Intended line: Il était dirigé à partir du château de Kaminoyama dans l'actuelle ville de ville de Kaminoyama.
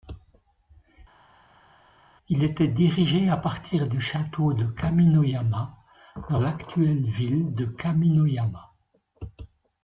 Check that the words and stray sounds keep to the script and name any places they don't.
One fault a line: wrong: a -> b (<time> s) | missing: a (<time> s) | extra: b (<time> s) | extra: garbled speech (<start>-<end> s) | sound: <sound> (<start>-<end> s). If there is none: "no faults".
missing: ville de (7.7 s)